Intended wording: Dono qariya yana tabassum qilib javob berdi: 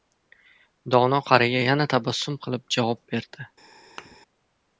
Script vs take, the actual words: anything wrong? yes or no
no